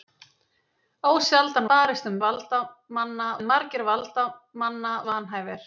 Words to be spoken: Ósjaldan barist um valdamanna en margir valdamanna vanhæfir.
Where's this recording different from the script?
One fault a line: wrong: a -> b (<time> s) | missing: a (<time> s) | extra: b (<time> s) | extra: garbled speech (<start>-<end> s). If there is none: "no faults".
no faults